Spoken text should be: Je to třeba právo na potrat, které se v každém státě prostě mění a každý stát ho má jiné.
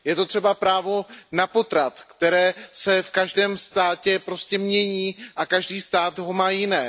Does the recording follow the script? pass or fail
pass